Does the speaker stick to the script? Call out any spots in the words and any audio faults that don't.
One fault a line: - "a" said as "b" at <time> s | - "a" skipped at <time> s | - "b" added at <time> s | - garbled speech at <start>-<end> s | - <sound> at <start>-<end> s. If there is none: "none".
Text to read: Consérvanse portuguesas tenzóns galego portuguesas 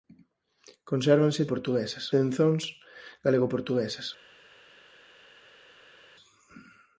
none